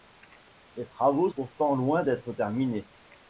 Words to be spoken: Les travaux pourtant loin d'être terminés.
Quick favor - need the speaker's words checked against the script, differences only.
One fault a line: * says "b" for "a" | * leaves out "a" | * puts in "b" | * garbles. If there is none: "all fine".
all fine